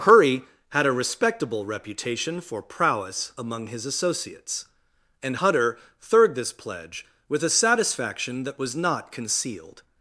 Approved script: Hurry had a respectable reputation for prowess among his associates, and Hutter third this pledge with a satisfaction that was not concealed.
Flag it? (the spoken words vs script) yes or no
no